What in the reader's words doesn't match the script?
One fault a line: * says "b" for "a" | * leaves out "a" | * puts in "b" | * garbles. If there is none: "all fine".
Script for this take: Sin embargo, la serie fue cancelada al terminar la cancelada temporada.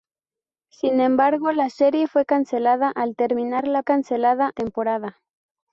all fine